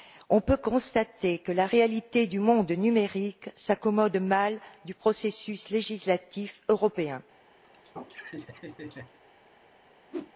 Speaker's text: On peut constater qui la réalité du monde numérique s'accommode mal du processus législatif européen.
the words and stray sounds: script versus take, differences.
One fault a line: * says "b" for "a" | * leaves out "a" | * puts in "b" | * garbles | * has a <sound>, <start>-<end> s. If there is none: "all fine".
* says "que" for "qui"
* has a laugh, 7.6-9.2 s
* has a whoosh, 10.1-10.3 s